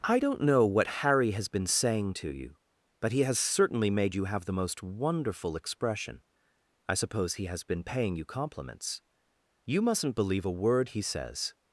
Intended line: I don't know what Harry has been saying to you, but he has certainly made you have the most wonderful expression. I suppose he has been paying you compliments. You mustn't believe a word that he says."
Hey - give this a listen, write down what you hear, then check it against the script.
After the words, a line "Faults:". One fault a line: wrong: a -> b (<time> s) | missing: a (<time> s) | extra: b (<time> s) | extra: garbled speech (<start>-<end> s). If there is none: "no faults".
I don't know what Harry has been saying to you, but he has certainly made you have the most wonderful expression. I suppose he has been paying you compliments. You mustn't believe a word he says."
Faults:
missing: that (10.9 s)